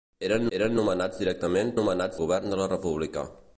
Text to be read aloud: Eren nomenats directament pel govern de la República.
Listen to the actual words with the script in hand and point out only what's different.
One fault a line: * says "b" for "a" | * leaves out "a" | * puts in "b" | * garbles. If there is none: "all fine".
* puts in "eren"
* says "nomenats" for "pel"